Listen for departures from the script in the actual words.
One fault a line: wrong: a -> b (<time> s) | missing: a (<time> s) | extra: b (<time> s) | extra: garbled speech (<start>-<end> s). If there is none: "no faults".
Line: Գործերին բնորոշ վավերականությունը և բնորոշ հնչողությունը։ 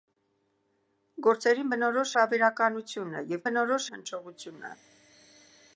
no faults